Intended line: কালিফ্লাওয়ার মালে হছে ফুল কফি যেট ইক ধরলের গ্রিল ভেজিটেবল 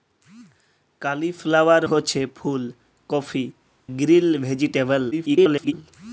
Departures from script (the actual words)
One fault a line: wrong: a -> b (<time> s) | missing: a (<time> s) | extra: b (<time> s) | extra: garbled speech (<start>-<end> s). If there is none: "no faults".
missing: মালে (1.8 s)
missing: যেট ইক ধরলের (3.5 s)
extra: garbled speech (5.1-5.7 s)